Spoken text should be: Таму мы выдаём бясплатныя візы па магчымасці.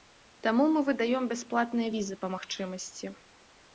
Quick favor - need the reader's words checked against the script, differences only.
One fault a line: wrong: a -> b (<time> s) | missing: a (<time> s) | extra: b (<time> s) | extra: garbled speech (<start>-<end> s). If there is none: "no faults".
no faults